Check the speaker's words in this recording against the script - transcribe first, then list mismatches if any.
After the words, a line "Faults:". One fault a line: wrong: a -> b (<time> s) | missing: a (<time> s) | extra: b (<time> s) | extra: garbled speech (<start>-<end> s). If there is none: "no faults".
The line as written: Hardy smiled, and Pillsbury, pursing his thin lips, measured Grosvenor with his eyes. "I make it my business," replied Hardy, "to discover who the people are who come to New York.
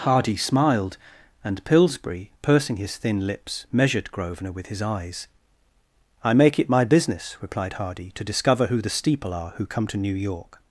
Hardy smiled, and Pillsbury, pursing his thin lips, measured Grosvenor with his eyes. "I make it my business," replied Hardy, "to discover who the steeple are who come to New York.
Faults:
wrong: people -> steeple (8.9 s)